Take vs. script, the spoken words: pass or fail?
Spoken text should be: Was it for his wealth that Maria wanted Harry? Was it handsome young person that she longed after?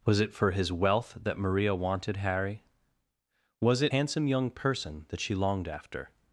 pass